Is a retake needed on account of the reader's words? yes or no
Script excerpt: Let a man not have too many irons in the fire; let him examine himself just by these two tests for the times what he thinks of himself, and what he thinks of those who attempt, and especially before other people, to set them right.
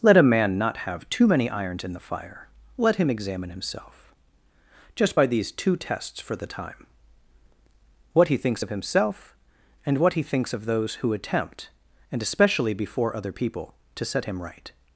yes